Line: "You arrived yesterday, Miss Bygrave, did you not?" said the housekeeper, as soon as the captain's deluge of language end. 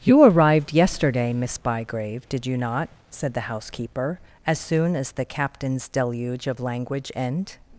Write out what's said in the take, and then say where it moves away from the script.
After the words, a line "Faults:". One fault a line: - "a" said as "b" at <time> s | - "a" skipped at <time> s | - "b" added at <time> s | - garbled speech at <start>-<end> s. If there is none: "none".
"You arrived yesterday, Miss Bygrave, did you not?" said the housekeeper, as soon as the captain's deluge of language end.
Faults:
none